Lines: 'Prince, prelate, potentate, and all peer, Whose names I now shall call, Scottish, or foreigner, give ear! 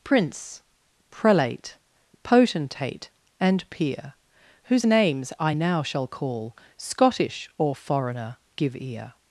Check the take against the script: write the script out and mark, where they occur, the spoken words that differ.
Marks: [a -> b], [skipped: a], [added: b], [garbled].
'Prince, prelate, potentate, and [skipped: all] peer, Whose names I now shall call, Scottish, or foreigner, give ear!